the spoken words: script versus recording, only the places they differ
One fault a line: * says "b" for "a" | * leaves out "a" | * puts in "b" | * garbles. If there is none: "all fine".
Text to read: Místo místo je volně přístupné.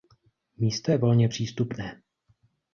* leaves out "místo"